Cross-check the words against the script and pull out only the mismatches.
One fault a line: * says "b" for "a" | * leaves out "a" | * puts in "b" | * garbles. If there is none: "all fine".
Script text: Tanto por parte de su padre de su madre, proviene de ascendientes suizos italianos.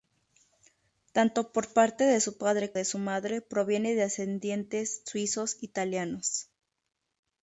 all fine